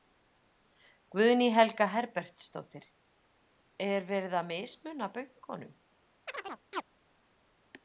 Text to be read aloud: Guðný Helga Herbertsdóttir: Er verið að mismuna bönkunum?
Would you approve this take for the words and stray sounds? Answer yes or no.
no